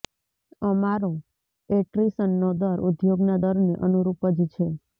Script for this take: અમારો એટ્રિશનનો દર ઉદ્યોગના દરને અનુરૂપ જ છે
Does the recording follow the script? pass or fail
pass